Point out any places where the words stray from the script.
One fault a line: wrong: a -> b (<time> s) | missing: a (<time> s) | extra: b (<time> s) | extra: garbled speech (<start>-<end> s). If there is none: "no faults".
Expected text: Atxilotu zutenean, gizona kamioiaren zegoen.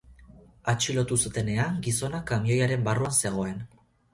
extra: barruan (2.9 s)